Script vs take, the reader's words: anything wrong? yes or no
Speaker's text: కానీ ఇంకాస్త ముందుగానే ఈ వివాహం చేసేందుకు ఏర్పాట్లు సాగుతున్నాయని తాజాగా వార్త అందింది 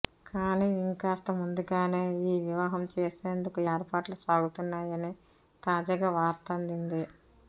no